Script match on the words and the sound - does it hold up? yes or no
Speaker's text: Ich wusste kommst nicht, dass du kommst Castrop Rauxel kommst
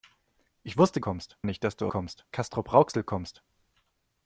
yes